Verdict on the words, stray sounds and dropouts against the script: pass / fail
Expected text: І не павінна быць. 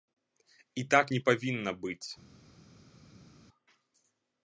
fail